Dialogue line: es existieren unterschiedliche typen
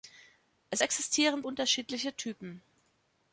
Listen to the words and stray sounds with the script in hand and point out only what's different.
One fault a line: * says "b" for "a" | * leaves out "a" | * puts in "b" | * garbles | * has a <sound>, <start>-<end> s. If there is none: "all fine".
all fine